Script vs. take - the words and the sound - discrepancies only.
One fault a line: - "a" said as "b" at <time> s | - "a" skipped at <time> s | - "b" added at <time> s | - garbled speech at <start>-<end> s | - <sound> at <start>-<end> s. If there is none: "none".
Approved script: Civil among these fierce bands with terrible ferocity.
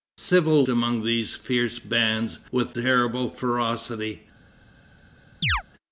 - chirp at 5.4-5.6 s